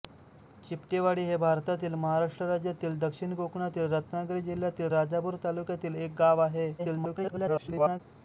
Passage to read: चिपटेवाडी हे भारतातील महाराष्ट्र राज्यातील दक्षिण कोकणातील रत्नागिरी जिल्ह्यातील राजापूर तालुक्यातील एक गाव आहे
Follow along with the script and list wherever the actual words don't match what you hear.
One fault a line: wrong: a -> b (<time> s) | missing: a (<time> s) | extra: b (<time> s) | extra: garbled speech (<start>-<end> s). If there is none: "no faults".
extra: garbled speech (6.8-8.0 s)